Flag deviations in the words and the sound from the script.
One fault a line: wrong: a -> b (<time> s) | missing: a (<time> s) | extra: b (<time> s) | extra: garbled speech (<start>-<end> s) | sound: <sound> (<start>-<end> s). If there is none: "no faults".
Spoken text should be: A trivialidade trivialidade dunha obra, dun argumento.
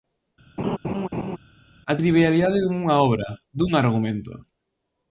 sound: laugh (0.6-1.4 s)
missing: trivialidade (2.6 s)